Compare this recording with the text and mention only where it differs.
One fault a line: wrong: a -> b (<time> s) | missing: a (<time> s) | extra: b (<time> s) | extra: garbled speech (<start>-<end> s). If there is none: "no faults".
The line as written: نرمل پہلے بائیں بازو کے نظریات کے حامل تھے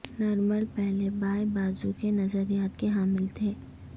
no faults